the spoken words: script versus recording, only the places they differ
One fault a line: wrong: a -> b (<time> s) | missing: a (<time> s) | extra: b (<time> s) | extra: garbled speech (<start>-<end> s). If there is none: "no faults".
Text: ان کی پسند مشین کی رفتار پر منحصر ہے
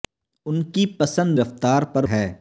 missing: مشین کی (1.4 s)
missing: منحصر (2.1 s)